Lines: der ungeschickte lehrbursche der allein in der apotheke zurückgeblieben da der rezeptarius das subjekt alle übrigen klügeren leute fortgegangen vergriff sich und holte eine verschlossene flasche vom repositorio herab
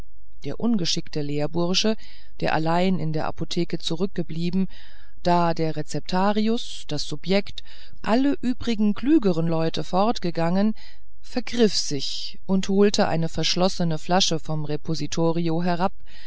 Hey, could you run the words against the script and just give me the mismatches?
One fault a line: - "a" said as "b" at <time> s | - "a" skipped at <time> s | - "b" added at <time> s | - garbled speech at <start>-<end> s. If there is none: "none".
none